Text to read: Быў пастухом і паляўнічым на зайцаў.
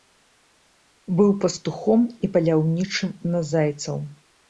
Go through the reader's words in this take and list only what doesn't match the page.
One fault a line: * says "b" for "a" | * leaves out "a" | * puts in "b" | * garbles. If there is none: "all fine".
all fine